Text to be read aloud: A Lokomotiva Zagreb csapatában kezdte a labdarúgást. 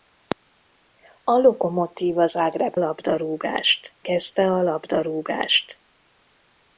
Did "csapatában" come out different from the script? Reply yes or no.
yes